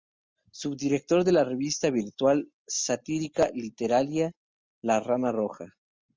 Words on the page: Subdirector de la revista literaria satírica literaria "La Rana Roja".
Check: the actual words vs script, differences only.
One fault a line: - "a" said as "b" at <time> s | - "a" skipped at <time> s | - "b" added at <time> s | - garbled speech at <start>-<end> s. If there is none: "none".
- "literaria" said as "virtual" at 1.9 s